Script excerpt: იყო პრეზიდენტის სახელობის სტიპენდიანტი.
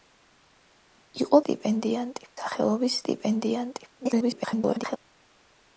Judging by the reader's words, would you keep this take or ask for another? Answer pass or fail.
fail